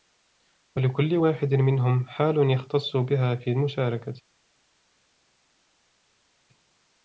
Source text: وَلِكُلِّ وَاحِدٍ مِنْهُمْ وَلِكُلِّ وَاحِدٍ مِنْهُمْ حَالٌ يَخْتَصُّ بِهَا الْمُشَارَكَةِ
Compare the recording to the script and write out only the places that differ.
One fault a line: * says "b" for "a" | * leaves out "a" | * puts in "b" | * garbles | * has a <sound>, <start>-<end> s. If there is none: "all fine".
* leaves out "وَلِكُلِّ وَاحِدٍ مِنْهُمْ"
* puts in "فِي"